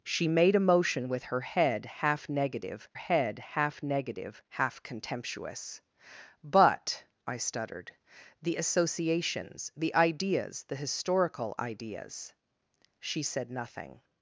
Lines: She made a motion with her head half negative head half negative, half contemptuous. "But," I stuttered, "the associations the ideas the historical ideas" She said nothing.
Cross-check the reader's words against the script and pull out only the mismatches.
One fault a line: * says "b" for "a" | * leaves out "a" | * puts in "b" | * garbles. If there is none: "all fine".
all fine